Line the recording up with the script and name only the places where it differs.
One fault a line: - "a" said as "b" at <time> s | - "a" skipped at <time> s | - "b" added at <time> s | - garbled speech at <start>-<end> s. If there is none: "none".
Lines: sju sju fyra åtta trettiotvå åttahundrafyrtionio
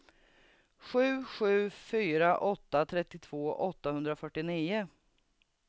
none